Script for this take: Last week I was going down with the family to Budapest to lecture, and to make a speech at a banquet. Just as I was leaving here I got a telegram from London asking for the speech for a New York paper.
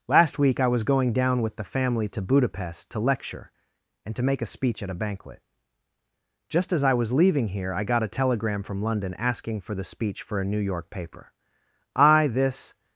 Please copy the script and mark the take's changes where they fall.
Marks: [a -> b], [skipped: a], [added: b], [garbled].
Last week I was going down with the family to Budapest to lecture, and to make a speech at a banquet. Just as I was leaving here I got a telegram from London asking for the speech for a New York paper. [added: I this]